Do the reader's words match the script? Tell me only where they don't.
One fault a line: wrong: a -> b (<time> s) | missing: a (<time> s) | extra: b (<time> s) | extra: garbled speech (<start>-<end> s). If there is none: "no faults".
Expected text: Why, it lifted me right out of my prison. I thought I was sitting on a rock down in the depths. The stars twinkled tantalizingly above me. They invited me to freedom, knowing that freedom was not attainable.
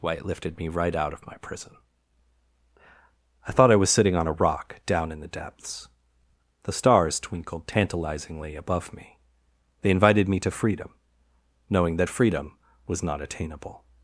no faults